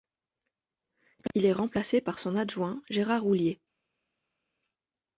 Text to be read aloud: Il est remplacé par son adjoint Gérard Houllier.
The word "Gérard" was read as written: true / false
true